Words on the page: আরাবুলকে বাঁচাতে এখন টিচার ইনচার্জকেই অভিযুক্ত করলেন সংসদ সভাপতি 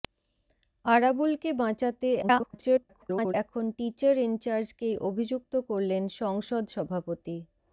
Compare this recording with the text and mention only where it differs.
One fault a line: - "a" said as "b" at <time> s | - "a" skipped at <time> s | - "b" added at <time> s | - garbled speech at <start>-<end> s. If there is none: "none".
- garbled speech at 2.2-3.3 s